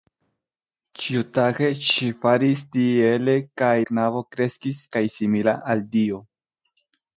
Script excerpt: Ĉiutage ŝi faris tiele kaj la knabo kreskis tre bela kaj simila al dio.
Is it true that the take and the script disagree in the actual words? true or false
true